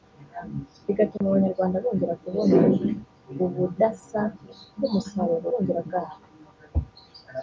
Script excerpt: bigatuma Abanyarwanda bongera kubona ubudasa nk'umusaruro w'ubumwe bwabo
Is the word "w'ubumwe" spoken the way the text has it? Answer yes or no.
no